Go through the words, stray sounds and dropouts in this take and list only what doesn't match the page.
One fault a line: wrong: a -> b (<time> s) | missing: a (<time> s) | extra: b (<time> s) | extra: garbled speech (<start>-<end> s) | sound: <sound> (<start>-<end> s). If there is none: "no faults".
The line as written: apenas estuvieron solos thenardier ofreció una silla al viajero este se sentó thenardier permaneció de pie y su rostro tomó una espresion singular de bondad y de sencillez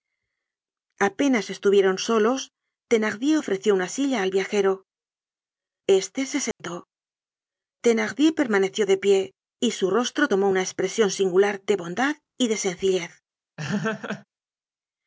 sound: dropout (6.5-6.6 s)
sound: laugh (13.6-14.2 s)